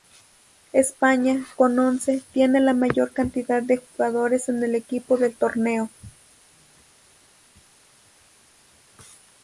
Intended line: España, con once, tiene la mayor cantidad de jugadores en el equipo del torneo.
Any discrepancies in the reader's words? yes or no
no